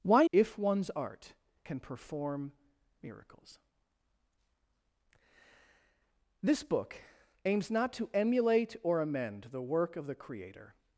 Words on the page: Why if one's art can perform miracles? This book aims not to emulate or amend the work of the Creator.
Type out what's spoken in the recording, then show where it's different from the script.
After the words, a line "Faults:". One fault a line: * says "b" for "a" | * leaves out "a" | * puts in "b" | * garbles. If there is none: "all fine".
Why if one's art can perform miracles? This book aims not to emulate or amend the work of the Creator.
Faults:
all fine